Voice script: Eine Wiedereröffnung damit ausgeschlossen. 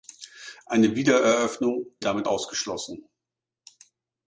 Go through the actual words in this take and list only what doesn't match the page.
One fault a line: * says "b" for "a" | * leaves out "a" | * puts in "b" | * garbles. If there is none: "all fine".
all fine